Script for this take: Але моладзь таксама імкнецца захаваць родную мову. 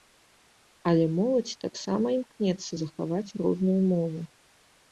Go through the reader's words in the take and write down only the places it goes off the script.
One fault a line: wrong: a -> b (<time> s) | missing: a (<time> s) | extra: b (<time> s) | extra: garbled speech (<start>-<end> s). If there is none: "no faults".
no faults